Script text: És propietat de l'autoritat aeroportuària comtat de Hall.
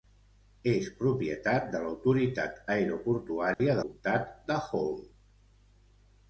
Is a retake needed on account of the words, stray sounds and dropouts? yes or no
yes